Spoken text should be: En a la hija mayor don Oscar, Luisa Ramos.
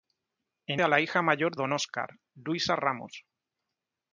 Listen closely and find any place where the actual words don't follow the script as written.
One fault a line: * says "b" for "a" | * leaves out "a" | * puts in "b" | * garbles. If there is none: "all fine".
all fine